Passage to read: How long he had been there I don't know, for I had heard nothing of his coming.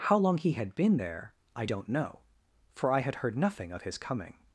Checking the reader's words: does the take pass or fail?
pass